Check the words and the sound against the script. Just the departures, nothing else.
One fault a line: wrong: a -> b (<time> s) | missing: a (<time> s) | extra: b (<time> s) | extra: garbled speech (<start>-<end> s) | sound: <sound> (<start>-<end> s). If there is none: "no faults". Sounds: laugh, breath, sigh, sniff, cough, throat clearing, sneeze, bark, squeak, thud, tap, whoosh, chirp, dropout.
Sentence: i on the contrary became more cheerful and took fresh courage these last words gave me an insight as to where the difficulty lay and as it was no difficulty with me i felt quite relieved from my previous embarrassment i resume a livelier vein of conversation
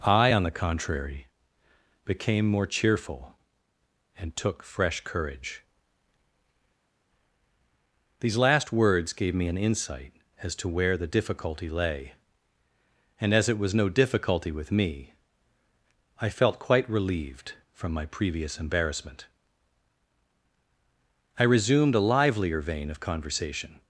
wrong: resume -> resumed (21.4 s)